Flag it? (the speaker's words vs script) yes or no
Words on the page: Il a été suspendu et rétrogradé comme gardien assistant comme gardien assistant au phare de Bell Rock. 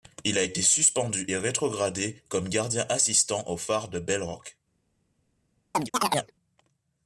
yes